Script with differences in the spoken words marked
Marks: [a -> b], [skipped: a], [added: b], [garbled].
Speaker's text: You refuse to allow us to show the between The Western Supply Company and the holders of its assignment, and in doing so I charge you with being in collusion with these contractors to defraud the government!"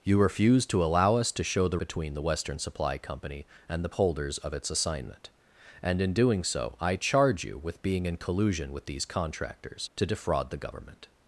You refuse to allow us to show the between The Western Supply Company and the holders of its assignment, and in doing so I charge you with being in collusion with these contractors to defraud the government!"